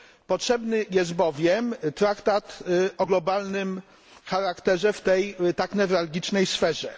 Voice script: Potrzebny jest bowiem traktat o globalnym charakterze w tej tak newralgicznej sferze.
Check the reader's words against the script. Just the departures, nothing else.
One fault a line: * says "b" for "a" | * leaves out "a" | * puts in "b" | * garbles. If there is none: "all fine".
all fine